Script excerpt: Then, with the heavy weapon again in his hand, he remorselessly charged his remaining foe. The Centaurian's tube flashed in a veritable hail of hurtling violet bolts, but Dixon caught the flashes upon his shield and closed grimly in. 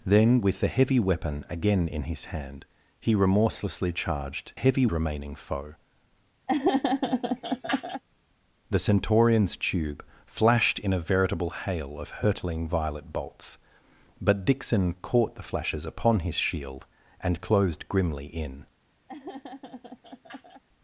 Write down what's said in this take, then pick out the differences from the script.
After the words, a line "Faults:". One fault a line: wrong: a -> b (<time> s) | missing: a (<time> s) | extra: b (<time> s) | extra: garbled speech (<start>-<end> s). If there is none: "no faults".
Then, with the heavy weapon again in his hand, he remorselessly charged heavy remaining foe. The Centaurian's tube flashed in a veritable hail of hurtling violet bolts, but Dixon caught the flashes upon his shield and closed grimly in.
Faults:
wrong: his -> heavy (4.5 s)